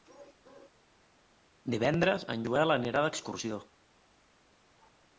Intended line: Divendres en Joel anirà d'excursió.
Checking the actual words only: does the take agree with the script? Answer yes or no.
yes